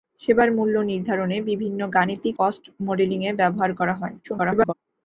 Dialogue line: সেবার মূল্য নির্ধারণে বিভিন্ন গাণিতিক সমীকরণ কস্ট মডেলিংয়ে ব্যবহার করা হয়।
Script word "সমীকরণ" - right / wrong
wrong